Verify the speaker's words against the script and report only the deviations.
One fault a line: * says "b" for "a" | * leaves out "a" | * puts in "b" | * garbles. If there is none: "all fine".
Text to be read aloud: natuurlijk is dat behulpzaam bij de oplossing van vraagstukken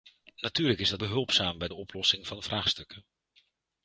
all fine